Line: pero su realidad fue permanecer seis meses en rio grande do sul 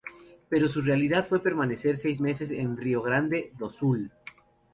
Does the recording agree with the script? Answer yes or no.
yes